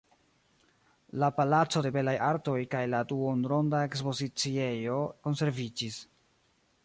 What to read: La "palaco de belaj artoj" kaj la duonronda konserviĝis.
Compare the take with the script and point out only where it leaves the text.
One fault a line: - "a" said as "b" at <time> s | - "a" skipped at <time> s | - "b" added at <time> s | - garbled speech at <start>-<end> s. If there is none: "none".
- "ekspoziciejo" added at 3.9 s